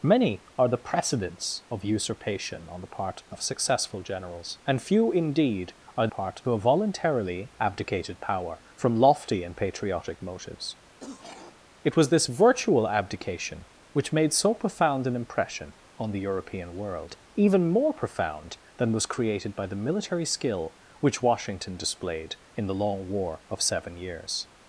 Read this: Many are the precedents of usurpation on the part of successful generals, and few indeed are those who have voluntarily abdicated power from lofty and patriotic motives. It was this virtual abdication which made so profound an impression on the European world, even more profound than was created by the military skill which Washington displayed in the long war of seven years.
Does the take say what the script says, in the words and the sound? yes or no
no